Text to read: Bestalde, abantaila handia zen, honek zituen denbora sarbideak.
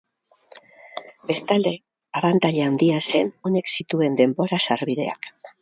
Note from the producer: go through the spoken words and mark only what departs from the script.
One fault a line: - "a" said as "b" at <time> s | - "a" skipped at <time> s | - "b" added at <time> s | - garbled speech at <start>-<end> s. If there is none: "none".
none